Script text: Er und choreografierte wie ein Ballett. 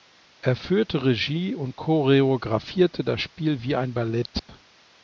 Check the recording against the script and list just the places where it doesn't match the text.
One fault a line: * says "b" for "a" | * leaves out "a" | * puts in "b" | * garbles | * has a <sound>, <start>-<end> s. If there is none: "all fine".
* puts in "führte Regie"
* puts in "das Spiel"
* has a dropout, 4.4-4.5 s